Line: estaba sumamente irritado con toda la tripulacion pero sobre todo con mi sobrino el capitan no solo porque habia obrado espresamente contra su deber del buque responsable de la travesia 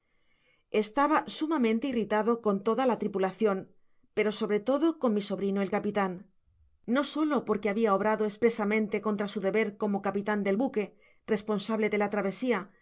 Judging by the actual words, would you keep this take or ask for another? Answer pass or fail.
fail